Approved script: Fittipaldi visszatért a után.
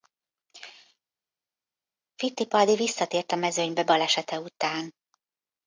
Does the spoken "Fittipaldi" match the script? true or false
true